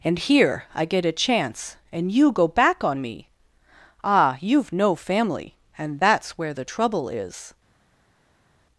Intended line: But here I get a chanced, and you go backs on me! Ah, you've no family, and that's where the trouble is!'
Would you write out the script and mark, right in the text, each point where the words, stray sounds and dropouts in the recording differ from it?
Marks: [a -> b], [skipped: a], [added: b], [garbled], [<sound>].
[But -> And] here I get a [chanced, -> chance] and you go [backs -> back] on me! Ah, you've no family, and that's where the trouble is!'